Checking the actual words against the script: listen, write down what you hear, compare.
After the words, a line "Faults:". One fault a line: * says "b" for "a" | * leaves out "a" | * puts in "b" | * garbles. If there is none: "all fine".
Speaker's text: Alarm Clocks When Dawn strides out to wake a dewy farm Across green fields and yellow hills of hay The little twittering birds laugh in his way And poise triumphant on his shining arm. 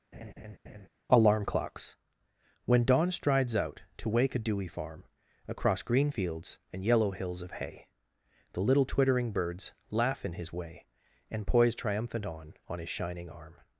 Alarm Clocks When Dawn strides out to wake a dewy farm Across green fields and yellow hills of hay The little twittering birds laugh in his way And poise triumphant on on his shining arm.
Faults:
* puts in "on"